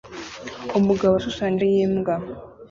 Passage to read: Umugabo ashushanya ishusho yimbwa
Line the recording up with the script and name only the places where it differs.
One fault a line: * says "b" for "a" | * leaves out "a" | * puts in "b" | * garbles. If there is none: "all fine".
* leaves out "ishusho"